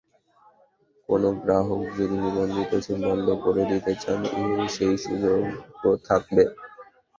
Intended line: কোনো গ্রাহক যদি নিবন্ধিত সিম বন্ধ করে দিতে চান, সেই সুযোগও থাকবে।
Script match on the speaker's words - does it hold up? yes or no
yes